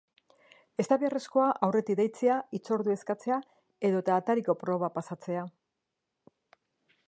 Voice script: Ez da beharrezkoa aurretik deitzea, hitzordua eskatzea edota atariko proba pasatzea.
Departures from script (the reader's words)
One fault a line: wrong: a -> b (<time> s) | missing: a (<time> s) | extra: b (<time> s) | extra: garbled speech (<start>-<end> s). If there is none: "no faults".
no faults